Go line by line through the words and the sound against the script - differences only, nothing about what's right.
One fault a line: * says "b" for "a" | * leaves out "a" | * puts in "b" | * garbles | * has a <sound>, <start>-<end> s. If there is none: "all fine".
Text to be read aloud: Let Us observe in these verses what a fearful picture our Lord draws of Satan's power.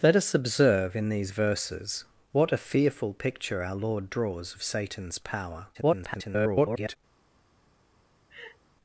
* garbles
* has a laugh, 8.3-8.6 s